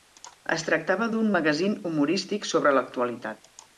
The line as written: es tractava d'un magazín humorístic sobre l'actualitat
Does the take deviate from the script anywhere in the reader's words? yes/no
no